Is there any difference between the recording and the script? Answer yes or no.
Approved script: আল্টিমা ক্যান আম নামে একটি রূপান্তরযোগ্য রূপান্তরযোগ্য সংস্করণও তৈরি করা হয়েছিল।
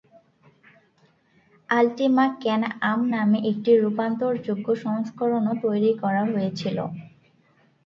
yes